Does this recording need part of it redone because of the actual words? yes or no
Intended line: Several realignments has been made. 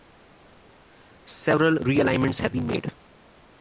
yes